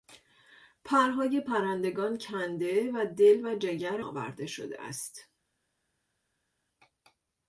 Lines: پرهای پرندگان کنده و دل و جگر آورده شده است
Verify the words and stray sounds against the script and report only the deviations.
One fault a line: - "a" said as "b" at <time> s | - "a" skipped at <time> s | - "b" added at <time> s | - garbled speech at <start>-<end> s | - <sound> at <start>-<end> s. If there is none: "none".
none